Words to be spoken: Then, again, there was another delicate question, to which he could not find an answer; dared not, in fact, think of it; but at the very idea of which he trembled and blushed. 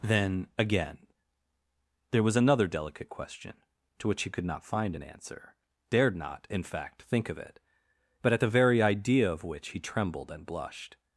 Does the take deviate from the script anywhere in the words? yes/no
no